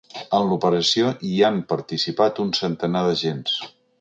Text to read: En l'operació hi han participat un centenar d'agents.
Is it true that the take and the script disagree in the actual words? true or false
false